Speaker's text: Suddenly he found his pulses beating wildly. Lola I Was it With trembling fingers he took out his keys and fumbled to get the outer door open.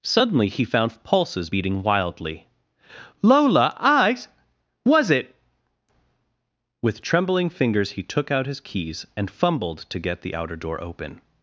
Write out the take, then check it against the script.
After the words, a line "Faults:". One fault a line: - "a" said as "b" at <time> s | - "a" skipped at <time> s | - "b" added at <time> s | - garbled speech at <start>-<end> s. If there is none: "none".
Suddenly he found pulses beating wildly. Lola I Was it With trembling fingers he took out his keys and fumbled to get the outer door open.
Faults:
- "his" skipped at 1.0 s